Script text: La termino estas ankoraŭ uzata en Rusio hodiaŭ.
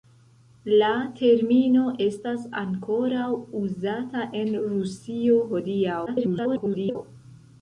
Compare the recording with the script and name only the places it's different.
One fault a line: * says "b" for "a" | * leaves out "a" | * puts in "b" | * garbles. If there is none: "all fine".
* garbles